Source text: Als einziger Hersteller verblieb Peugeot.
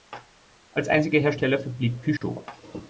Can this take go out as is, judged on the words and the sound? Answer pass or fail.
fail